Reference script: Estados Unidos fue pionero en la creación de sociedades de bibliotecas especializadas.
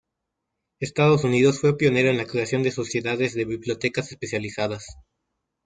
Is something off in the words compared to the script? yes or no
no